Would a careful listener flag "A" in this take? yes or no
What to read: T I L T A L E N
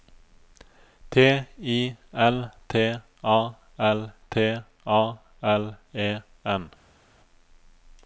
no